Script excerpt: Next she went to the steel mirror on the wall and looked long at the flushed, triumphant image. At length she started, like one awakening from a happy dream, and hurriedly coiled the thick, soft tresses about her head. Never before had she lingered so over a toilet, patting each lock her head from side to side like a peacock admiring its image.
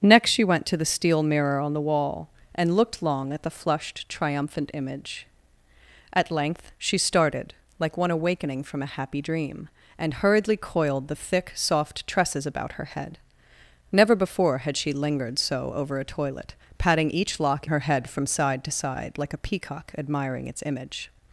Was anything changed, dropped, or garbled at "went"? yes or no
no